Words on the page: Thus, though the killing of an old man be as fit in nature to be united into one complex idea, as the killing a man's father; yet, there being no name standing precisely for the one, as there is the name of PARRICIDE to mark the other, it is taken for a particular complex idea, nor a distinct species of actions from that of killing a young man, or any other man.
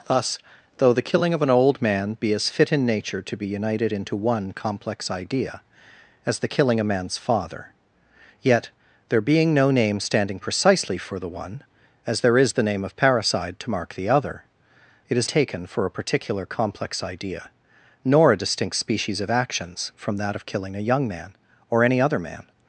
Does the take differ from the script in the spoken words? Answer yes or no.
no